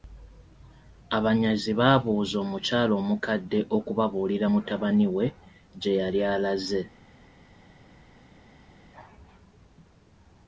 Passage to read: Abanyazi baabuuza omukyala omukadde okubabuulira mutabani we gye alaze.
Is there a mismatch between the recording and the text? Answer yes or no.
yes